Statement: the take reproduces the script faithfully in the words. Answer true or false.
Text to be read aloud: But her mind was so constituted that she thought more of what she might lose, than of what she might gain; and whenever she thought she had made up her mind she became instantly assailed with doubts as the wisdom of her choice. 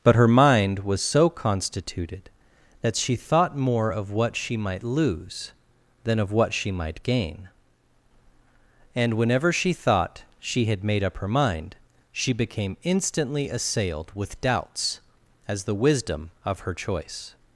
true